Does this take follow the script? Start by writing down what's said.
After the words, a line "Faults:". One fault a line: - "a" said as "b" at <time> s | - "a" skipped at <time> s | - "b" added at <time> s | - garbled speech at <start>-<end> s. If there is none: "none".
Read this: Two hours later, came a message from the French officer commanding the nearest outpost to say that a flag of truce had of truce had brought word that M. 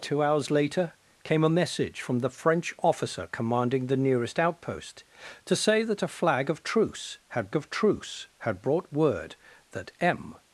Two hours later, came a message from the French officer commanding the nearest outpost to say that a flag of truce had of truce had brought word that M.
Faults:
none